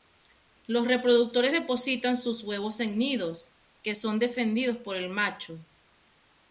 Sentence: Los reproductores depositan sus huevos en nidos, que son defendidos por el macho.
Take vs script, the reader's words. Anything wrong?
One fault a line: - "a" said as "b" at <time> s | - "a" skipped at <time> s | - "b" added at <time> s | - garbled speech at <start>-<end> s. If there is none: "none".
none